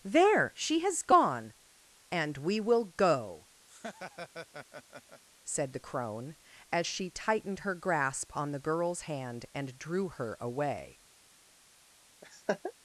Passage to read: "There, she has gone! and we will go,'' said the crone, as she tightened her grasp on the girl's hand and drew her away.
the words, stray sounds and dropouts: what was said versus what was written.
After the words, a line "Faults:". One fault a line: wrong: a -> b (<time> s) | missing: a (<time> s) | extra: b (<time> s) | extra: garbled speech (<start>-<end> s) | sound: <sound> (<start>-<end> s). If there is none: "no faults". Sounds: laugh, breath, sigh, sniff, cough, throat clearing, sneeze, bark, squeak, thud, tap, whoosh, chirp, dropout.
"There, she has gone! and we will go,'' said the crone, as she tightened her grasp on the girl's hand and drew her away.
Faults:
sound: laugh (3.7-5.2 s)
sound: laugh (12.2-12.7 s)